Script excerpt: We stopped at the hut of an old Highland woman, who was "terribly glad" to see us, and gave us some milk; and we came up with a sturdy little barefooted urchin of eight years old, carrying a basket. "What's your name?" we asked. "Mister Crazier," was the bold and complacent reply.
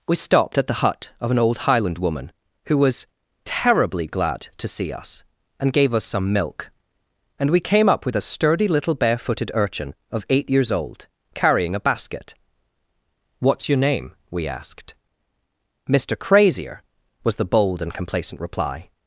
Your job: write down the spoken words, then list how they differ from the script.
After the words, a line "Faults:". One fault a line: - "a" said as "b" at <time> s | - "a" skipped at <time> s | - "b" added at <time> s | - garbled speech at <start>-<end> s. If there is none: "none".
We stopped at the hut of an old Highland woman, who was "terribly glad" to see us, and gave us some milk; and we came up with a sturdy little barefooted urchin of eight years old, carrying a basket. "What's your name?" we asked. "Mister Crazier," was the bold and complacent reply.
Faults:
none